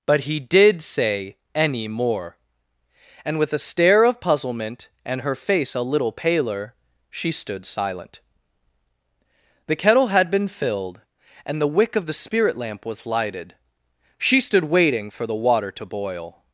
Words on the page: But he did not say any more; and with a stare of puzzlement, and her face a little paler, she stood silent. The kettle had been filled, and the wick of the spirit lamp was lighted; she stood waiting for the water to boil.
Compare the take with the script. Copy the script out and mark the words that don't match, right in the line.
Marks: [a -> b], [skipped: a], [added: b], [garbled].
But he did [skipped: not] say any more; and with a stare of puzzlement, and her face a little paler, she stood silent. The kettle had been filled, and the wick of the spirit lamp was lighted; she stood waiting for the water to boil.